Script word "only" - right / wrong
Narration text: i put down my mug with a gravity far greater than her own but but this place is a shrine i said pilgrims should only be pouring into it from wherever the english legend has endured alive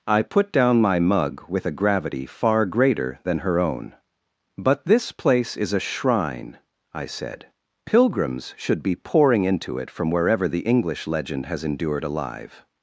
wrong